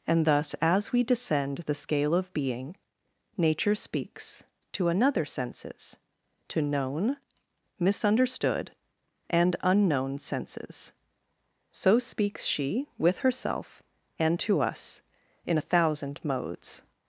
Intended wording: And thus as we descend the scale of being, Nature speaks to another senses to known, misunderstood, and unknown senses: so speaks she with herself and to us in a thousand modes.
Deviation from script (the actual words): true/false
false